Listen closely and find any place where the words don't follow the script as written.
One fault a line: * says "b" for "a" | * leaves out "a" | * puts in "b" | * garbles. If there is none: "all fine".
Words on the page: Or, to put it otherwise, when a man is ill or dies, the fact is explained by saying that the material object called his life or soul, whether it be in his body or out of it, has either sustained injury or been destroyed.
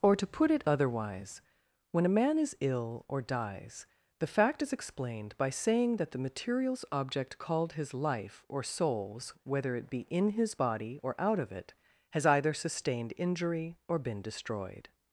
* says "materials" for "material"
* says "souls" for "soul"